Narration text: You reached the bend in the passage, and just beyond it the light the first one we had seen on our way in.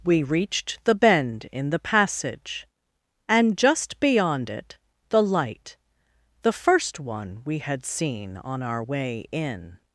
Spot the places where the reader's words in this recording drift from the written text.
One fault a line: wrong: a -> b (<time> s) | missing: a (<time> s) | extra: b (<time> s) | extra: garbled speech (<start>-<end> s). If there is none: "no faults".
wrong: You -> We (0.0 s)